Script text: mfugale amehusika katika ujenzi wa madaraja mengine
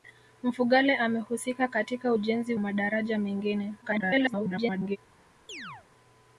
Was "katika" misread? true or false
false